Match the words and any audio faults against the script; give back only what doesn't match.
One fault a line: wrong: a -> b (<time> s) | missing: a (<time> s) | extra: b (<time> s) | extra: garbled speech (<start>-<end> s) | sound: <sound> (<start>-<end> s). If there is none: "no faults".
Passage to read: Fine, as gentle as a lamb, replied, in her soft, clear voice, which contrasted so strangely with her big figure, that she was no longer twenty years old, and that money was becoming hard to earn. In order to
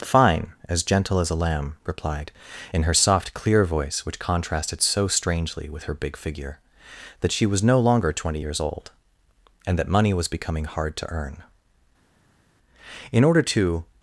no faults